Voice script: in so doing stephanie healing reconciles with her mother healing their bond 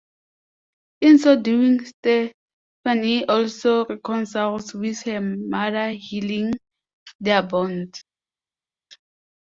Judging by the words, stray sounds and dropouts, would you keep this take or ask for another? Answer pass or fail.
fail